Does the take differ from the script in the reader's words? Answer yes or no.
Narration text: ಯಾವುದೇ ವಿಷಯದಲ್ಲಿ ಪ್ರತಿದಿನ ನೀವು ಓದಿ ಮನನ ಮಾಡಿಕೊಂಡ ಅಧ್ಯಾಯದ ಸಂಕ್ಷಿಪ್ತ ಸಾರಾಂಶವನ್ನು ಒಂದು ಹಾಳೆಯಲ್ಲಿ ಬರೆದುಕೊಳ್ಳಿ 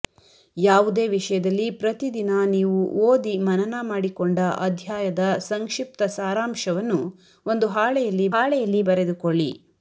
yes